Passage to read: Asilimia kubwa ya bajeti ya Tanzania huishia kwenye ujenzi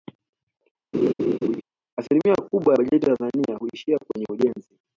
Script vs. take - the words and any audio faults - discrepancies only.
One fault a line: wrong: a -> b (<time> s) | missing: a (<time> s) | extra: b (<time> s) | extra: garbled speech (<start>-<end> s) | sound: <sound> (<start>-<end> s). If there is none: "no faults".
sound: laugh (0.9-1.6 s)